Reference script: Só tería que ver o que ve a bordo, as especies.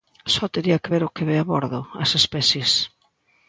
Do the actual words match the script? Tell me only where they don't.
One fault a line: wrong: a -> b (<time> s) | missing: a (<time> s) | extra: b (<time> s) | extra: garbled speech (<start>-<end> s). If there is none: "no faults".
no faults